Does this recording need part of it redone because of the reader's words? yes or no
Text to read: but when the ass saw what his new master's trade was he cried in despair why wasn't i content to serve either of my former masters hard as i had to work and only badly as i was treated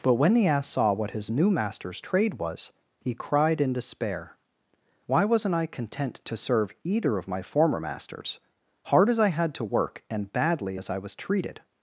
yes